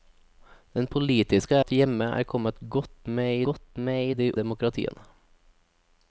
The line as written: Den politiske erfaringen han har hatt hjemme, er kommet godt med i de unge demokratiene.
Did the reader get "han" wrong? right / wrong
wrong